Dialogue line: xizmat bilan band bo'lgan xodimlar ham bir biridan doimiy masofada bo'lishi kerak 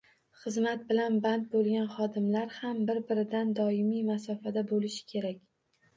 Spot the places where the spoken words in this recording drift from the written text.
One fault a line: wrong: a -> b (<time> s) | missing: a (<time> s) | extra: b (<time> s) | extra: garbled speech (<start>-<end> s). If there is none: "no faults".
no faults